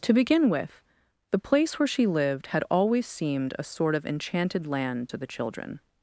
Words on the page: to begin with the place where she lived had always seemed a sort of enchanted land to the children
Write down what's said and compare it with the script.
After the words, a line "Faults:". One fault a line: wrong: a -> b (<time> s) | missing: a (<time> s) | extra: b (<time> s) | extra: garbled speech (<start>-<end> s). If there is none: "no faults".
to begin with the place where she lived had always seemed a sort of enchanted land to the children
Faults:
no faults